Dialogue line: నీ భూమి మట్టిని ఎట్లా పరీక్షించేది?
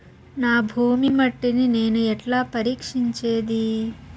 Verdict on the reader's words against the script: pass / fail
fail